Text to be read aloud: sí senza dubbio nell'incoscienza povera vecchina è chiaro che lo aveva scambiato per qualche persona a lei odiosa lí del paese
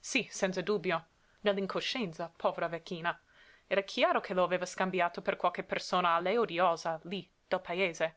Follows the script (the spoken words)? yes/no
no